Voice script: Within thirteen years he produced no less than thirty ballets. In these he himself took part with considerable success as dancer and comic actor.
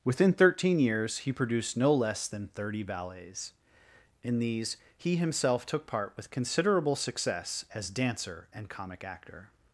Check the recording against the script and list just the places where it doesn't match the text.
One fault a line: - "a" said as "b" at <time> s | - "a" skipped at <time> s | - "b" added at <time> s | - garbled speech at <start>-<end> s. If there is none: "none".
none